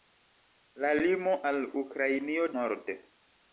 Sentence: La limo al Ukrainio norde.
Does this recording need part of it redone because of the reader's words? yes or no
no